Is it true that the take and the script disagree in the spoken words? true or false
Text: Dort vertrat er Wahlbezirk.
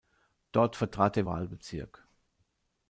false